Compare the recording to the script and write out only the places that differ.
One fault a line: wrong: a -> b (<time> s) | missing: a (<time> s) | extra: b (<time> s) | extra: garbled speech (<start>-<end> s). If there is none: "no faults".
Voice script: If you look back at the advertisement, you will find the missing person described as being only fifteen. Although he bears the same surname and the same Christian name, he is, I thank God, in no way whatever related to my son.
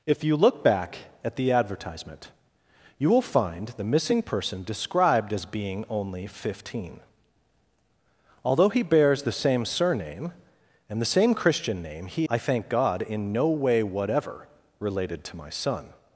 missing: is (12.3 s)